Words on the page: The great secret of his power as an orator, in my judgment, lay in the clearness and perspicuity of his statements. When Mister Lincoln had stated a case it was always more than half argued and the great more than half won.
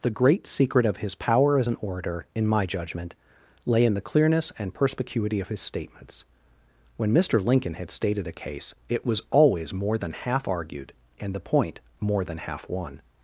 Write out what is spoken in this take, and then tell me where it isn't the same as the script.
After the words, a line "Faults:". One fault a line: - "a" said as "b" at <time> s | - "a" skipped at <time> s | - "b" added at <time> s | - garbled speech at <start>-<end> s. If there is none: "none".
The great secret of his power as an orator, in my judgment, lay in the clearness and perspicuity of his statements. When Mister Lincoln had stated a case it was always more than half argued and the point more than half won.
Faults:
- "great" said as "point" at 11.4 s